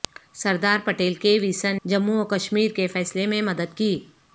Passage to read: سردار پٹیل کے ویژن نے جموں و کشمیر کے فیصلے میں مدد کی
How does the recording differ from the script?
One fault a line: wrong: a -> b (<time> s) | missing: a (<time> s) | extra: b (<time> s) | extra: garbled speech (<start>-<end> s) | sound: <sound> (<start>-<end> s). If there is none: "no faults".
missing: نے (1.8 s)